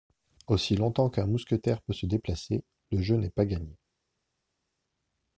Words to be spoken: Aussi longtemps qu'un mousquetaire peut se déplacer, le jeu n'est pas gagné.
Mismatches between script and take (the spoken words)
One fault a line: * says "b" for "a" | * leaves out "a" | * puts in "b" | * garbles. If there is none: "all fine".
all fine